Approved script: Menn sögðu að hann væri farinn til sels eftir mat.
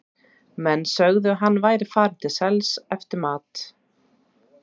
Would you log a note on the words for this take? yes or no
no